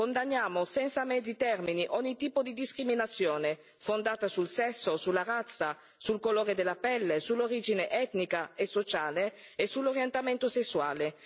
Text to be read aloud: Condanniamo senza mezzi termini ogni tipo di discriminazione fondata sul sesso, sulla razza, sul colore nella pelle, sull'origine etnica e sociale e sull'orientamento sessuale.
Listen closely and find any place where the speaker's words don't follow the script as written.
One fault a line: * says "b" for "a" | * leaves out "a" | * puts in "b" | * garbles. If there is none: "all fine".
* says "della" for "nella"